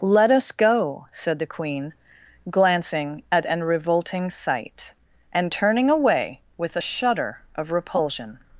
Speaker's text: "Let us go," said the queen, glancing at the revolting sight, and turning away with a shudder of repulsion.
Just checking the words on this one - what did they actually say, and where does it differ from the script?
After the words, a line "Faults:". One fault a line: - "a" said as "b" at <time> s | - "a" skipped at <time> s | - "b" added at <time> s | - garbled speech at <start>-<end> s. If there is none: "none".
"Let us go," said the queen, glancing at an revolting sight, and turning away with a shudder of repulsion.
Faults:
- "the" said as "an" at 3.5 s